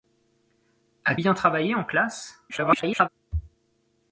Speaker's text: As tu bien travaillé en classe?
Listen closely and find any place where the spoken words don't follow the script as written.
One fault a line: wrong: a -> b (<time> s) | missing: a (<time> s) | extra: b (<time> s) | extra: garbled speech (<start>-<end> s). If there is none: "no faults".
missing: tu (1.1 s)
extra: garbled speech (2.5-3.1 s)